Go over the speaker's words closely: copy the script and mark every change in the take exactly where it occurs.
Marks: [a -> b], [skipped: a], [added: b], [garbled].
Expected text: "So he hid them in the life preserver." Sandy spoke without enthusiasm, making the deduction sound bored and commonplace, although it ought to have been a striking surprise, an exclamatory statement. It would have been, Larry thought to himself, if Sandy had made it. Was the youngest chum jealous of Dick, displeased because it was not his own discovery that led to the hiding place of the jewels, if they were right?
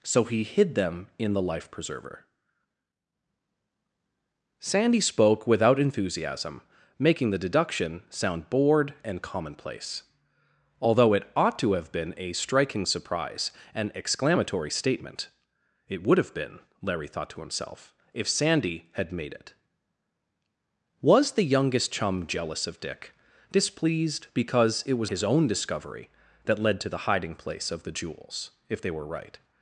"So he hid them in the life preserver." Sandy spoke without enthusiasm, making the deduction sound bored and commonplace, although it ought to have been a striking surprise, an exclamatory statement. It would have been, Larry thought to himself, if Sandy had made it. Was the youngest chum jealous of Dick, displeased because it was [skipped: not] his own discovery that led to the hiding place of the jewels, if they were right?